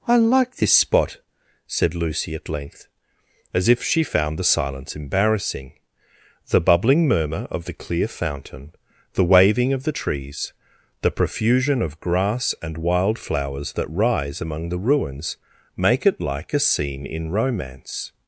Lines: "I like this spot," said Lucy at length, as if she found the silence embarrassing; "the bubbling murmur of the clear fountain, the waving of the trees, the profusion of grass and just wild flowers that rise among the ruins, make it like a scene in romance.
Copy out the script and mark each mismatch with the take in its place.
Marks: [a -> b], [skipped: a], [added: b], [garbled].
"I like this spot," said Lucy at length, as if she found the silence embarrassing; "the bubbling murmur of the clear fountain, the waving of the trees, the profusion of grass and [skipped: just] wild flowers that rise among the ruins, make it like a scene in romance.